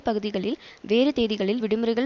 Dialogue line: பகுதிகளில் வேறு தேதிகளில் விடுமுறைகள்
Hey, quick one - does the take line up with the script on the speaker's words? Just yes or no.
yes